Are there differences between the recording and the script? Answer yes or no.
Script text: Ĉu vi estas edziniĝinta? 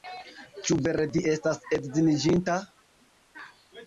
yes